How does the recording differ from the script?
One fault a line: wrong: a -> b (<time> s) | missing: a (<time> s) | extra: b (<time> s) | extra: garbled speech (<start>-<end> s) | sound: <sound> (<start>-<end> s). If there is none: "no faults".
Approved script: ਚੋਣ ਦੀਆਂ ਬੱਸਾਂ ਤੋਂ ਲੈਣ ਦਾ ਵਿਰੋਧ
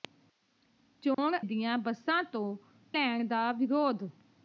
sound: dropout (1.1-1.2 s)